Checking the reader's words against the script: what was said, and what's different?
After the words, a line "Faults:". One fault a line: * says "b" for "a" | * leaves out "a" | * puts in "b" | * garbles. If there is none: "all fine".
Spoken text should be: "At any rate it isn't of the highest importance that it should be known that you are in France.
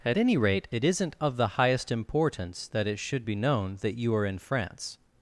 "At any rate it isn't of the highest importance that it should be known that you are in France.
Faults:
all fine